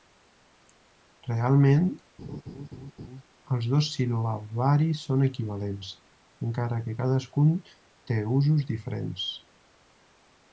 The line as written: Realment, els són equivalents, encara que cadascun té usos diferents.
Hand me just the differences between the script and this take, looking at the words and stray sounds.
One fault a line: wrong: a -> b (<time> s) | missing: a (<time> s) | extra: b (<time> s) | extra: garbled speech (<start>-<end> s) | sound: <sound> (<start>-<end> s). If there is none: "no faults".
sound: laugh (2.2-3.2 s)
extra: dos sil·labaris (3.7 s)